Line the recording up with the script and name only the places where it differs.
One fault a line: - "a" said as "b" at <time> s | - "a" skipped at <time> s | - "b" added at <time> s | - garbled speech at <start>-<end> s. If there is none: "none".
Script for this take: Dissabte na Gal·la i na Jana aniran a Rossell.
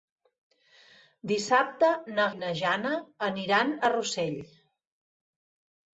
- "Gal·la" skipped at 2.2 s